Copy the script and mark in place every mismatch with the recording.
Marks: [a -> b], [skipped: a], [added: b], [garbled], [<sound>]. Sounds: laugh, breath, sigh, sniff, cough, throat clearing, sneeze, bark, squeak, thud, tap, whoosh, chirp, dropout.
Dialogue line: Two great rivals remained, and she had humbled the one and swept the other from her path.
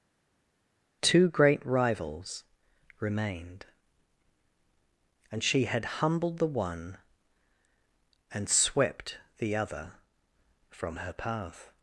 Two great rivals remained, and she had humbled the one and swept the other from her path.